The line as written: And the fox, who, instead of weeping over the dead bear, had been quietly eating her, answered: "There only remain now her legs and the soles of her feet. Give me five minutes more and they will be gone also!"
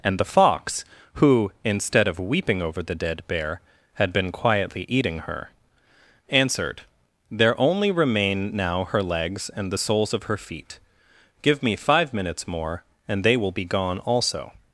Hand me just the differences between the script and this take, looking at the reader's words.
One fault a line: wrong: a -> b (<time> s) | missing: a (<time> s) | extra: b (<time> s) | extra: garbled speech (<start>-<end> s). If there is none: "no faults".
no faults